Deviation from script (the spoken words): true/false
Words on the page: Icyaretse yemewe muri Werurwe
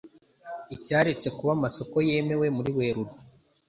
true